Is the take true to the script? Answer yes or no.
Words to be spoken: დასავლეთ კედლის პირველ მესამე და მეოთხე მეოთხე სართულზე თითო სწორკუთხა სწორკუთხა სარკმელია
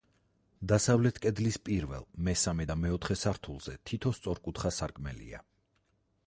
no